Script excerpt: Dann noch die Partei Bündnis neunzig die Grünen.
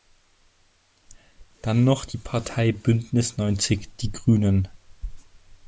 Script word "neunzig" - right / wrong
right